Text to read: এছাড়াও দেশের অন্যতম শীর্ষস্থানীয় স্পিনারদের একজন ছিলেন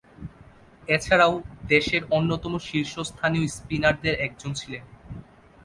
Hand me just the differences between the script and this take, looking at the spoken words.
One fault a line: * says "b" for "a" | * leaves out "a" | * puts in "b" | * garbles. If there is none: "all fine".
all fine